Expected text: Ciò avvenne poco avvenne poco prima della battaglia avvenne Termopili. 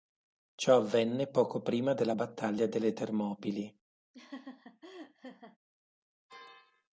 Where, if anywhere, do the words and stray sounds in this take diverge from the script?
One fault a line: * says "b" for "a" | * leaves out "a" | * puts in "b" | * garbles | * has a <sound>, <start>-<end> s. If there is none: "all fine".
* leaves out "avvenne poco"
* says "delle" for "avvenne"
* has a laugh, 4.1-5.6 s